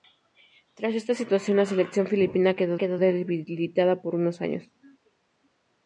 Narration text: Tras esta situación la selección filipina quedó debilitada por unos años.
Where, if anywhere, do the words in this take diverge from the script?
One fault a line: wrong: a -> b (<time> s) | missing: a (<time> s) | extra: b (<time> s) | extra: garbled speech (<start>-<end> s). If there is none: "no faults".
extra: quedó (2.8 s)